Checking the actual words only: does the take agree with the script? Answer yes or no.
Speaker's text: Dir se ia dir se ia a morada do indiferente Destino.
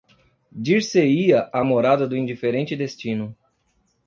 no